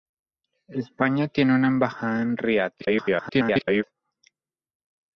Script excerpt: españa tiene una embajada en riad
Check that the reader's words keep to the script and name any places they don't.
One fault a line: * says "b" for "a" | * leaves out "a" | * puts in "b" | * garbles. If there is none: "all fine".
* garbles